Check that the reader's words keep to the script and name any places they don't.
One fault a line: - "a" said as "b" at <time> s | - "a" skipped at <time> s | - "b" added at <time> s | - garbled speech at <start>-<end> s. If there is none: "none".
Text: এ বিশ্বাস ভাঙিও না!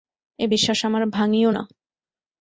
- "আমার" added at 0.9 s